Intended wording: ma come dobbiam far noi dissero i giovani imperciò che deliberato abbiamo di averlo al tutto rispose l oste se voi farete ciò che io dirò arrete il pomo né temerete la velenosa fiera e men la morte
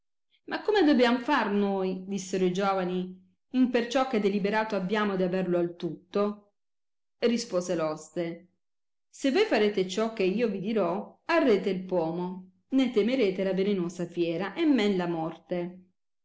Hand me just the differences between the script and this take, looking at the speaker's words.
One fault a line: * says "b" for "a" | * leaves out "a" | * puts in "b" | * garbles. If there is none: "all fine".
* puts in "vi"